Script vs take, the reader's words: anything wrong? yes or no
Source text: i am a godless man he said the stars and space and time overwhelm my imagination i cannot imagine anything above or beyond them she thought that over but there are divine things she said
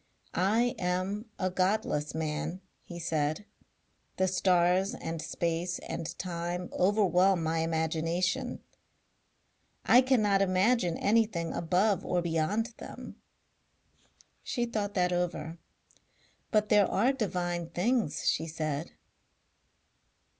no